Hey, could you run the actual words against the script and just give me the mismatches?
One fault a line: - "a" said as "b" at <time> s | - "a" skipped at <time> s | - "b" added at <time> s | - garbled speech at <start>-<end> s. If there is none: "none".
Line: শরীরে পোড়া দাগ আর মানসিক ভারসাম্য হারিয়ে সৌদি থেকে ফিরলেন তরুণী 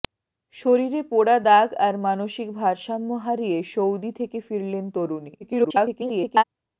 - garbled speech at 5.4-6.4 s